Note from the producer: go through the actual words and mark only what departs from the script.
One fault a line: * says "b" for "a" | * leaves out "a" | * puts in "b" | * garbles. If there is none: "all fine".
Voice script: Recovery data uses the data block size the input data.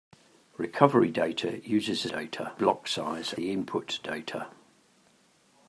all fine